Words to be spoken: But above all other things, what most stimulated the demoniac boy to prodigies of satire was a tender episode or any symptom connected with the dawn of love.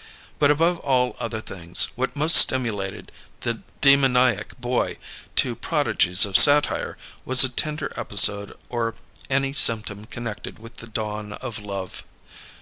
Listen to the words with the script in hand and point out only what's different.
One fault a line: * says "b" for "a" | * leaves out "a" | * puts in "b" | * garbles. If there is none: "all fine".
all fine